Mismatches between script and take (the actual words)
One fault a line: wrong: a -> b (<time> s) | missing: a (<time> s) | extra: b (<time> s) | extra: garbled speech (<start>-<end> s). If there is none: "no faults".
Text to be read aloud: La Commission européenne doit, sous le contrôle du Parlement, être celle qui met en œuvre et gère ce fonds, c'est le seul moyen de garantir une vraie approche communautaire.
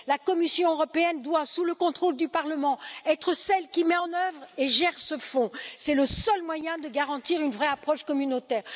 no faults